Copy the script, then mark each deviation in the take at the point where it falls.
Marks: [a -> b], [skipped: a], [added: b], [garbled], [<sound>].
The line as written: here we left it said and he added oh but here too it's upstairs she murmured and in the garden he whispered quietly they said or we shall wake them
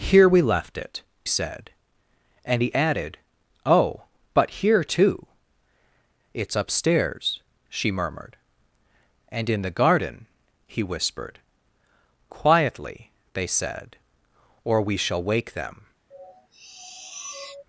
here we left it said and he added oh but here too it's upstairs she murmured and in the garden he whispered quietly they said or we shall wake them [sniff]